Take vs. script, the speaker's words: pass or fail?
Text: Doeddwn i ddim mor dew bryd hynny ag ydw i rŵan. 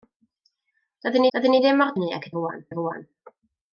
fail